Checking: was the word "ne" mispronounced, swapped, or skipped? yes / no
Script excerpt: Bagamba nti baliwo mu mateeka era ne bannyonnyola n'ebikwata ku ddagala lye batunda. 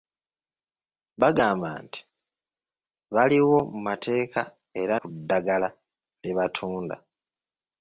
yes